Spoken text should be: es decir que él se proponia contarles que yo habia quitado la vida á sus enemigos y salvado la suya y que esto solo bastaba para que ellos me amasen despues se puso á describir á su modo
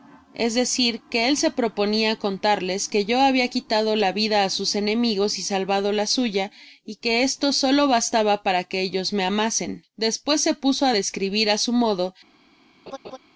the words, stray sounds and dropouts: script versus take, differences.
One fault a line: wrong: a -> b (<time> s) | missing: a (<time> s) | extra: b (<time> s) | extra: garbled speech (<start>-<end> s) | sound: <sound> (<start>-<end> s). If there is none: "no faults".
sound: laugh (12.9-13.2 s)